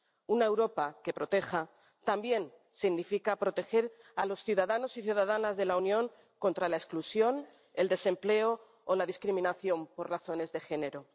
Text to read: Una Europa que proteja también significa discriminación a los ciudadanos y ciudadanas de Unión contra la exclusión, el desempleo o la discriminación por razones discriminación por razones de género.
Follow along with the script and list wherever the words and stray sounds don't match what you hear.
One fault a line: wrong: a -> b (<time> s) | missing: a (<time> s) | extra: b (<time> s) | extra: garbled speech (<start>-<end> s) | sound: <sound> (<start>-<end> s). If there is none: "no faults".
wrong: discriminación -> proteger (3.4 s)
extra: la (5.7 s)
missing: discriminación por razones (10.5 s)